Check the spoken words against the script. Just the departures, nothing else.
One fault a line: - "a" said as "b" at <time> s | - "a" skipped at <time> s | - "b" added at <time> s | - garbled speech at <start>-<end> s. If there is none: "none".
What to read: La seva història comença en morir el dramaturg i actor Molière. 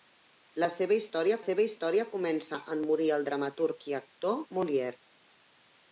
- "seva història" added at 1.4 s